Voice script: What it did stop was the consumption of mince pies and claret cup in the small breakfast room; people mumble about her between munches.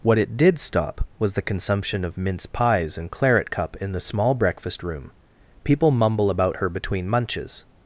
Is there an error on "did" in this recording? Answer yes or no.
no